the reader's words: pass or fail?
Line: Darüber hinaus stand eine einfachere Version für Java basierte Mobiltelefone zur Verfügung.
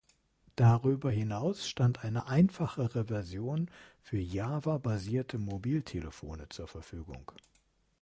pass